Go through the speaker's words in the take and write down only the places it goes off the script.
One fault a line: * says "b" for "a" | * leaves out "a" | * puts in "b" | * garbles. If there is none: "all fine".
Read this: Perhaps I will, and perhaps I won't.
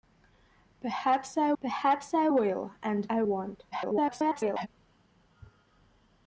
* puts in "perhaps I"
* leaves out "perhaps"
* garbles